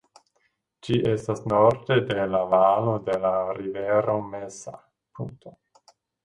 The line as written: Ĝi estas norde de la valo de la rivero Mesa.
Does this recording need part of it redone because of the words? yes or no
no